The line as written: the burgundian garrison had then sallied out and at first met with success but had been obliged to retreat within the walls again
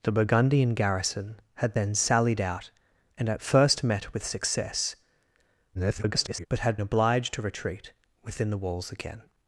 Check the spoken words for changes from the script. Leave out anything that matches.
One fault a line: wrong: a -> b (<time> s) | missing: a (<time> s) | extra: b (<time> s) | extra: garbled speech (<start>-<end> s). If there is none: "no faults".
extra: garbled speech (5.7-6.5 s)
missing: been (6.8 s)